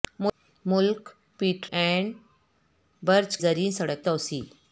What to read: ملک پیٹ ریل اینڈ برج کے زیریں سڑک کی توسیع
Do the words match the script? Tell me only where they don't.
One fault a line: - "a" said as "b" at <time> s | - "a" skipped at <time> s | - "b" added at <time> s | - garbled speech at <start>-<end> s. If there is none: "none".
- "ریل" skipped at 1.7 s
- "کے" skipped at 3.4 s
- "کی" skipped at 4.0 s